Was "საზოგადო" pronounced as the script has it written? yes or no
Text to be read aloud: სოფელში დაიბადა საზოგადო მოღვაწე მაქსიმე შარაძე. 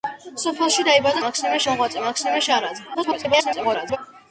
no